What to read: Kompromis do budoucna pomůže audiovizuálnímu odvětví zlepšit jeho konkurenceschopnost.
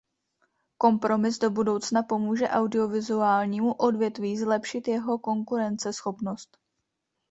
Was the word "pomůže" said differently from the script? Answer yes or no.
no